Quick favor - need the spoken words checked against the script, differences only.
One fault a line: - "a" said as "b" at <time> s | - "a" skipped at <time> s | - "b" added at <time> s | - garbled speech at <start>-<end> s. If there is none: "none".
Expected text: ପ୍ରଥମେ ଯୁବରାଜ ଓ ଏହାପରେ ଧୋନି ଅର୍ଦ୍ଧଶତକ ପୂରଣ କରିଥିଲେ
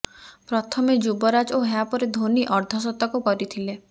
- "ପୂରଣ" skipped at 3.2 s